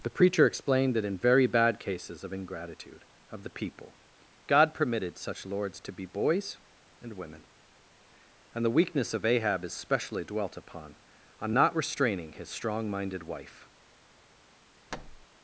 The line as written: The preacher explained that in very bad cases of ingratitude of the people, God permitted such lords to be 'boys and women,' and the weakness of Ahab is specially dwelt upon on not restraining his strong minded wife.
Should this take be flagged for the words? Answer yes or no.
no